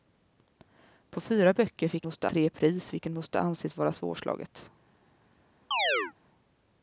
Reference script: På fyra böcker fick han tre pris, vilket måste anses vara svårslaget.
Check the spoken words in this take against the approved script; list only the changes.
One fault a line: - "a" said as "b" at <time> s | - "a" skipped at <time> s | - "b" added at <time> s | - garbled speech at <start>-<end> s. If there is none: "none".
- "han" said as "måste" at 2.0 s